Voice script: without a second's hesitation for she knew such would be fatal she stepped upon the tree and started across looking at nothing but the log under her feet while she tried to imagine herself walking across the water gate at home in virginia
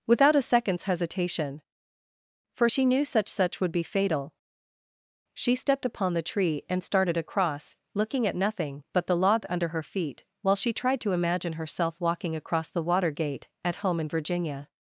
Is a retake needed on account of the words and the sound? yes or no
yes